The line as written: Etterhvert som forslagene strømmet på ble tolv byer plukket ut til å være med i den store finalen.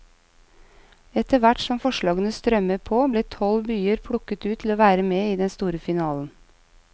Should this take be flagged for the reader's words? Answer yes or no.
no